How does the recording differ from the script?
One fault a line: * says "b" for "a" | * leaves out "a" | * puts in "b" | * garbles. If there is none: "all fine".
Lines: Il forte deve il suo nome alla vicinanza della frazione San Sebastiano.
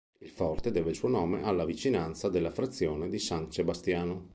* puts in "di"